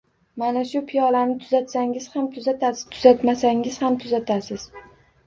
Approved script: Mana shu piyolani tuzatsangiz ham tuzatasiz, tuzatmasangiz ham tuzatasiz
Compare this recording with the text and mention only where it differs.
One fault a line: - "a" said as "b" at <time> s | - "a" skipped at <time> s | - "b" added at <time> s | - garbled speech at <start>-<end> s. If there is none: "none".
none